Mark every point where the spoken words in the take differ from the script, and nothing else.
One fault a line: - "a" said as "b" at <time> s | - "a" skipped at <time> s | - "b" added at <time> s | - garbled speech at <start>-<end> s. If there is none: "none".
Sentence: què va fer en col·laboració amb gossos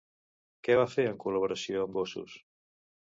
none